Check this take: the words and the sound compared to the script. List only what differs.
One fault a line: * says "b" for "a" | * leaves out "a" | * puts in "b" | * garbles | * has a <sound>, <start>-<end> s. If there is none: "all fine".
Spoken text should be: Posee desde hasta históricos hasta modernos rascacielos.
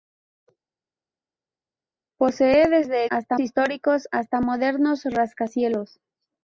all fine